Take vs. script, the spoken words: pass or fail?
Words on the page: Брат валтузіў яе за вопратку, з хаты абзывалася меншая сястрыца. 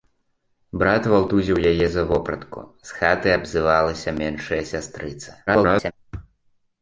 fail